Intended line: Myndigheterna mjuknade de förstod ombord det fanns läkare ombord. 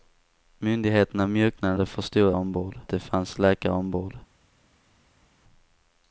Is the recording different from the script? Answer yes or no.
no